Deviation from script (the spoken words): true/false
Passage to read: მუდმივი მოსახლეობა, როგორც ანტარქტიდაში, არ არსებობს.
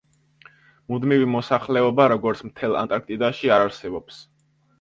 true